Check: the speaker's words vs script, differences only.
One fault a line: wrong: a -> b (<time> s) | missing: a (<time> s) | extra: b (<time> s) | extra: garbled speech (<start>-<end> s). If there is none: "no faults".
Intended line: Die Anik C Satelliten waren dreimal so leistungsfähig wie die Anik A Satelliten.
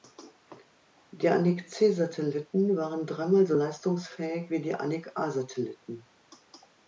no faults